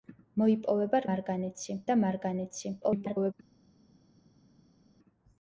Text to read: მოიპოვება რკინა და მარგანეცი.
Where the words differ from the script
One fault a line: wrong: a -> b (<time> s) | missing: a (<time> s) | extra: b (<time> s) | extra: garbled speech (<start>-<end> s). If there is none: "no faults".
wrong: რკინა -> მარგანეცი (1.1 s)
extra: garbled speech (2.8-3.3 s)